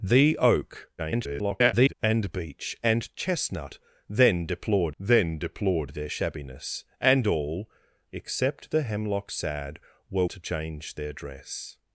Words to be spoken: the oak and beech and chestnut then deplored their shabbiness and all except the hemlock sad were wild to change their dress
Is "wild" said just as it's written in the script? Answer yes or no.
no